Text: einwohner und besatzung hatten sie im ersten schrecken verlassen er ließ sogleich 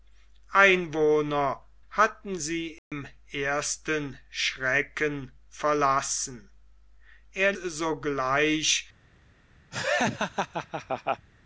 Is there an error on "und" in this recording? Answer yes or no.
yes